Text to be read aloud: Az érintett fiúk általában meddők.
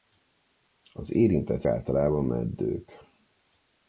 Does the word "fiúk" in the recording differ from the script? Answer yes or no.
yes